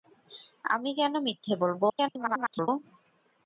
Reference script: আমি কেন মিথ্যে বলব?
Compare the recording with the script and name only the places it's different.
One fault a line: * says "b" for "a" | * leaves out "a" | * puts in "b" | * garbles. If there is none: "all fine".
* garbles